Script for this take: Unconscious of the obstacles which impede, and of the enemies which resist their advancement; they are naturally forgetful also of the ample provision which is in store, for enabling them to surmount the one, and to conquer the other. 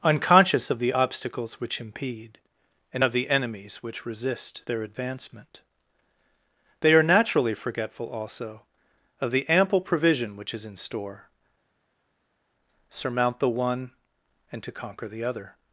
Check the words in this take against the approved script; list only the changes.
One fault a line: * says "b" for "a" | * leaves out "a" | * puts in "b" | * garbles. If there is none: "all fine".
* leaves out "for enabling them to"